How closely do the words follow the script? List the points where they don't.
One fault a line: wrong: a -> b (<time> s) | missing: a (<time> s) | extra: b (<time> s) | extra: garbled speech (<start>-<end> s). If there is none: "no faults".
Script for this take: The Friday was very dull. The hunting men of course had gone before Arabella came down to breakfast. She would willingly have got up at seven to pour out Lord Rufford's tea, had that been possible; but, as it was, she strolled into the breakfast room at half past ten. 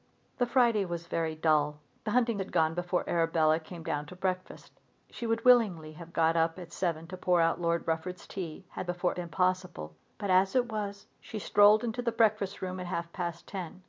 missing: men of course (2.4 s)
wrong: that -> before (8.8 s)